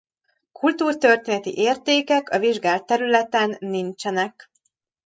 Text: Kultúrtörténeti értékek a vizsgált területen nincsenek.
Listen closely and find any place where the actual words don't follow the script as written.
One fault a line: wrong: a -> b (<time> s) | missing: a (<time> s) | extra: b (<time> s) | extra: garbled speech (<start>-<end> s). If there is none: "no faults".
no faults